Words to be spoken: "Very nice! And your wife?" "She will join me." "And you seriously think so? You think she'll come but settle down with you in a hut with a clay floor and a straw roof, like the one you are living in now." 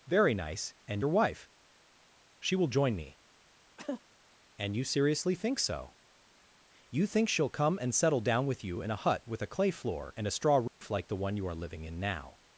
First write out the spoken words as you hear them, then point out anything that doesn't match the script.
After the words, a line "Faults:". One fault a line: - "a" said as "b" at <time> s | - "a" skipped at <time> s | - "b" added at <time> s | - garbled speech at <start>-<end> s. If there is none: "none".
"Very nice! And your wife?" "She will join me." "And you seriously think so? You think she'll come and settle down with you in a hut with a clay floor and a straw roof, like the one you are living in now."
Faults:
- "but" said as "and" at 7.8 s